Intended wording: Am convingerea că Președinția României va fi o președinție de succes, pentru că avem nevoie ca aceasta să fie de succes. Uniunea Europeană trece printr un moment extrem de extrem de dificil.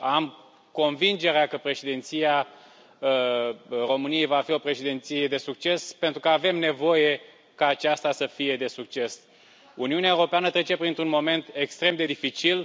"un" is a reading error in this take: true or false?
false